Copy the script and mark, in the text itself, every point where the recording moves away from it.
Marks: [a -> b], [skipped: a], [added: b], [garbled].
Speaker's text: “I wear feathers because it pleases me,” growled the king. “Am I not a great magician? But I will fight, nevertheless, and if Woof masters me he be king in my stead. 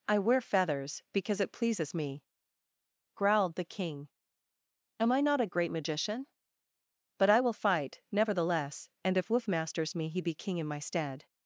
“I wear feathers because it pleases me,” growled the king. “Am I not a great magician? But I will fight, nevertheless, and if Woof masters me he be king in my stead.